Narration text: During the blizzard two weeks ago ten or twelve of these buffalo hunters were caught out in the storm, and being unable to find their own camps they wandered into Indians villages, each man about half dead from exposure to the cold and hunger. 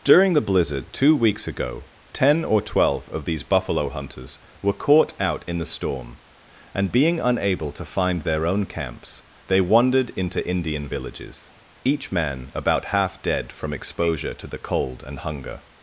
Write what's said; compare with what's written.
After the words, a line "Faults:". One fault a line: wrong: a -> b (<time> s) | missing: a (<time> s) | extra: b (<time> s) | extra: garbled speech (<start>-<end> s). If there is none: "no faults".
During the blizzard two weeks ago ten or twelve of these buffalo hunters were caught out in the storm, and being unable to find their own camps they wandered into Indian villages, each man about half dead from exposure to the cold and hunger.
Faults:
wrong: Indians -> Indian (10.5 s)